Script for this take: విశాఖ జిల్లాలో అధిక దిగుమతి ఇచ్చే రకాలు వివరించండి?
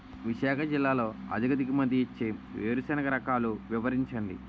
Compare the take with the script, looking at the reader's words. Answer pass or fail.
fail